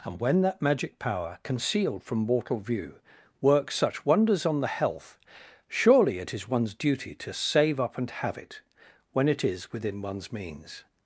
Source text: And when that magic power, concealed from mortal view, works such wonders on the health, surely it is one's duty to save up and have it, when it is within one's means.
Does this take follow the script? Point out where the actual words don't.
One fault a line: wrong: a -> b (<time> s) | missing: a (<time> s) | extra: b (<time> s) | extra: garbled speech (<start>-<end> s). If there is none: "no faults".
no faults